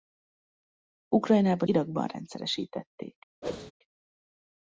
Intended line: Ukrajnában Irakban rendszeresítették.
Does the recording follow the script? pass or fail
pass